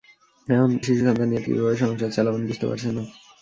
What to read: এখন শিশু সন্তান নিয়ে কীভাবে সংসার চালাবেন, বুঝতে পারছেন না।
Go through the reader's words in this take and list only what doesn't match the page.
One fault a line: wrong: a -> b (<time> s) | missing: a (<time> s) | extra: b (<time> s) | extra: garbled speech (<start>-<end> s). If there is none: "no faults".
no faults